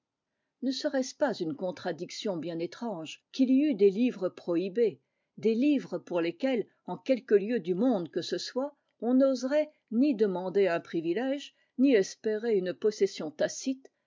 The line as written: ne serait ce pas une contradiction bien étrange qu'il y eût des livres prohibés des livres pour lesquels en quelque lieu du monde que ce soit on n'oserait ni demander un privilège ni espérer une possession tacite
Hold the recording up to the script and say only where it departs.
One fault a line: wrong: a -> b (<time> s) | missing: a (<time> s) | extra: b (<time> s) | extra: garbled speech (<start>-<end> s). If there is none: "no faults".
no faults